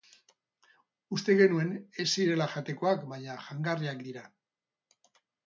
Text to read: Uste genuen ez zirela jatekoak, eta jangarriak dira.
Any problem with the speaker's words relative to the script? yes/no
yes